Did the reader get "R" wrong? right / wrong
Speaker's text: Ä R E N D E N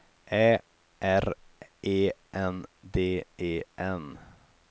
right